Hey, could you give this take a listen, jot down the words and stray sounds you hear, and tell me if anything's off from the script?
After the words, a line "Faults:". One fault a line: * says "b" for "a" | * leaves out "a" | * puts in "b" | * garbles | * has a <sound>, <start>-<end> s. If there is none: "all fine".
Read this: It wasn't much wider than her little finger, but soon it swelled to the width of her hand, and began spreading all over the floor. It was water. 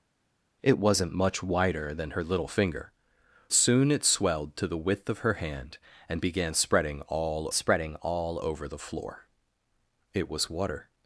It wasn't much wider than her little finger, soon it swelled to the width of her hand, and began spreading all spreading all over the floor. It was water.
Faults:
* leaves out "but"
* puts in "spreading all"